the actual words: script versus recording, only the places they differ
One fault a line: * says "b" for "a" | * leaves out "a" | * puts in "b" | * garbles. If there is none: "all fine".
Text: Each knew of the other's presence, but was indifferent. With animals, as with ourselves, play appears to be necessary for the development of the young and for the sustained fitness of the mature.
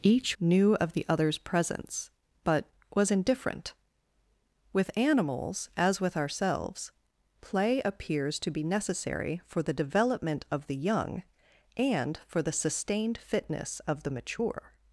all fine